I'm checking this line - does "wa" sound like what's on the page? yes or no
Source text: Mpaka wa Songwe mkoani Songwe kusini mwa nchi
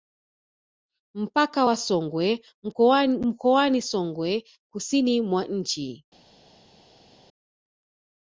yes